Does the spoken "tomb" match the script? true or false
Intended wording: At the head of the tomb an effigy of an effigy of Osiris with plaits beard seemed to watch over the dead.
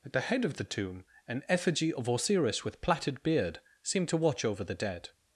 true